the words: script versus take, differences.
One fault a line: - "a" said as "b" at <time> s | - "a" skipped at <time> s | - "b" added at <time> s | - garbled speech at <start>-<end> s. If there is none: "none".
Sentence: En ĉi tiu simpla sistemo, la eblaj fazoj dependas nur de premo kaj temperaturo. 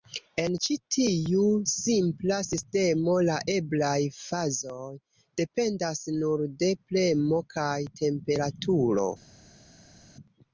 none